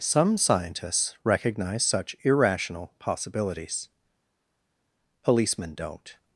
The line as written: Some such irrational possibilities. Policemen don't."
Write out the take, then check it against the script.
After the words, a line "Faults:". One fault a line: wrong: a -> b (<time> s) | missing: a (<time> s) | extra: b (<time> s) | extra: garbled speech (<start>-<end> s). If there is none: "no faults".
Some scientists recognize such irrational possibilities. Policemen don't."
Faults:
extra: scientists recognize (0.4 s)